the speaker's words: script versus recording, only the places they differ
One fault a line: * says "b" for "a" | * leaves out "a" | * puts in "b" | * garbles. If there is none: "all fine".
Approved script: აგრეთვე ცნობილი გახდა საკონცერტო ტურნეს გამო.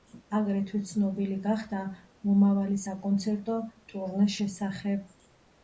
* puts in "მომავალი"
* says "შესახებ" for "გამო"